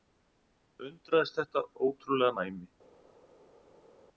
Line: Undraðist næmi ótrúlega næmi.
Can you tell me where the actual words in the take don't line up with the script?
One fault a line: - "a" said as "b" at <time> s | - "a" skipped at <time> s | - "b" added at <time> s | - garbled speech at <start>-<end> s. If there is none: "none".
- "næmi" said as "þetta" at 1.4 s